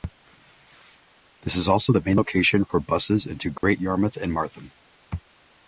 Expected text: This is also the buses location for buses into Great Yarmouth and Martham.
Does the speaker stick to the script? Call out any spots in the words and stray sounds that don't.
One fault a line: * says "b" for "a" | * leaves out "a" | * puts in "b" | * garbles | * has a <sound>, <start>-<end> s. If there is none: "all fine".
* says "main" for "buses"
* has a dropout, 3.6-3.6 s